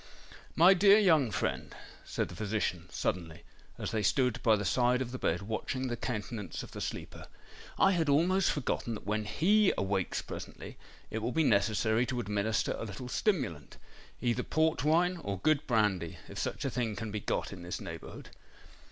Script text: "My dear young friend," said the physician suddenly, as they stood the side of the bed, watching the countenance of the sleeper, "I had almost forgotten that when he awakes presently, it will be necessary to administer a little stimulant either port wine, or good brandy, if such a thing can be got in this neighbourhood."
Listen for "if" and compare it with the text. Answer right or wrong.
right